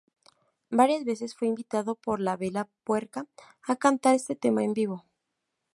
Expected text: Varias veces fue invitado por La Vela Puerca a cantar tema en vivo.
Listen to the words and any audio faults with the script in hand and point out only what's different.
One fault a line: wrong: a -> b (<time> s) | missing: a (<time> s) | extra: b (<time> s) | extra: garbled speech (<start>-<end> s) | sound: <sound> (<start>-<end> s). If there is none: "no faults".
extra: este (4.2 s)